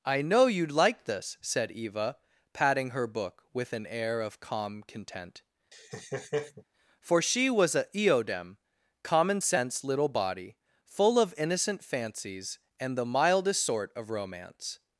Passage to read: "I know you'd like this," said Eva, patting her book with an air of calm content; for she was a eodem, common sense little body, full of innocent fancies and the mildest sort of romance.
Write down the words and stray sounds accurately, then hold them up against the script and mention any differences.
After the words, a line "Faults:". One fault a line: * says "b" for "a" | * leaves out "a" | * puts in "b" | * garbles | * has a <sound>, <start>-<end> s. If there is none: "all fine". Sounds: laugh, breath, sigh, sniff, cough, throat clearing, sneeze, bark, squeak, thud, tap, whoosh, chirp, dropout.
"I know you'd like this," said Eva, patting her book with an air of calm content; for she was a eodem, common sense little body, full of innocent fancies and the mildest sort of romance.
Faults:
* has a laugh, 5.7-6.6 s